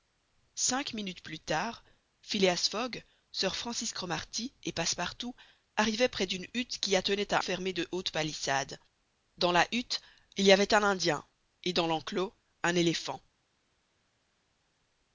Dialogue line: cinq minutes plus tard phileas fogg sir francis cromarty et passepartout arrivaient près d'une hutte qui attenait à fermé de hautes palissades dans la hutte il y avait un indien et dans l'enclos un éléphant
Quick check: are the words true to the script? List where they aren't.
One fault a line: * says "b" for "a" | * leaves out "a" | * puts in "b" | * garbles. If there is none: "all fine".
all fine